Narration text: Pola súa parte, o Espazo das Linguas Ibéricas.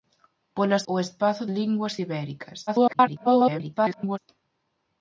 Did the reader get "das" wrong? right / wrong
wrong